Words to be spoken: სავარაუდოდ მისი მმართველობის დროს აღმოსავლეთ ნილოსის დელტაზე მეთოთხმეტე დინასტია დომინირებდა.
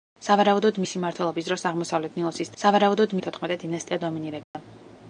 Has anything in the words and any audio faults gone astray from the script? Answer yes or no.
yes